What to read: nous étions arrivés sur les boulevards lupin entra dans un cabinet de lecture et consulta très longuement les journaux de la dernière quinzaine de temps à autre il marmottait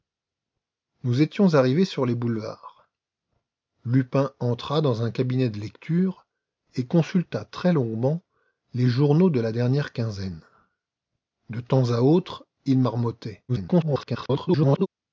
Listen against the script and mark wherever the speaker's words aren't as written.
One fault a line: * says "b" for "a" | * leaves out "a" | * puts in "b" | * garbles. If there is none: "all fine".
* garbles